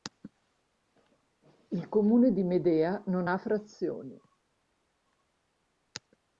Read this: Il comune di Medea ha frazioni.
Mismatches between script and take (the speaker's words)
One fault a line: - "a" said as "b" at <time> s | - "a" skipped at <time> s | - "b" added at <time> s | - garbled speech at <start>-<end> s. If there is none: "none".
- "non" added at 3.0 s